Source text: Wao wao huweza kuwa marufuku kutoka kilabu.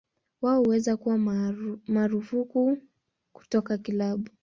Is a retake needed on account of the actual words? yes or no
yes